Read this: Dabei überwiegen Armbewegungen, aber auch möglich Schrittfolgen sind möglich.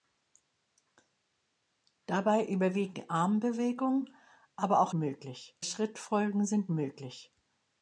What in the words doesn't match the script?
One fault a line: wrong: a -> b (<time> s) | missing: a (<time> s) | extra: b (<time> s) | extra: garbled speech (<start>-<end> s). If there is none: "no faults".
no faults